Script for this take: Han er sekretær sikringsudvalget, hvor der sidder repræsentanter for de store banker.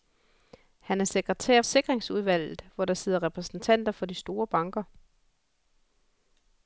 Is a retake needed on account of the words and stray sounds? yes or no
no